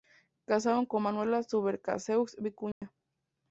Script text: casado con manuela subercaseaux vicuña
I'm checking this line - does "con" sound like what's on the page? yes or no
yes